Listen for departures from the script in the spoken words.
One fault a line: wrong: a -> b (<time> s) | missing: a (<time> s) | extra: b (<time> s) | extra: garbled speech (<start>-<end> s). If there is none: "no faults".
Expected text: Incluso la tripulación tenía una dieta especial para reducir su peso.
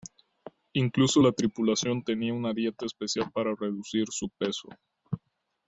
no faults